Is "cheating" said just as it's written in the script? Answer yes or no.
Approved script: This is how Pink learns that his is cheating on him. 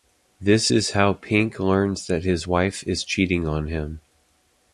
yes